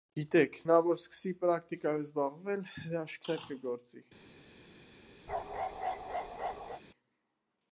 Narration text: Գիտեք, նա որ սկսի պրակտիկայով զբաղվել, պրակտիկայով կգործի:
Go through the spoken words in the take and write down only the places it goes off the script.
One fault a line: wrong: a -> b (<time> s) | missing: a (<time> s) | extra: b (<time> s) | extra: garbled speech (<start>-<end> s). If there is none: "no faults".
wrong: պրակտիկայով -> հրաշքներ (2.7 s)